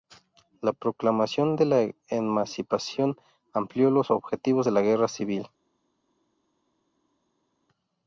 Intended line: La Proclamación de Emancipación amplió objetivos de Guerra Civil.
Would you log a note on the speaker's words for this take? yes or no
yes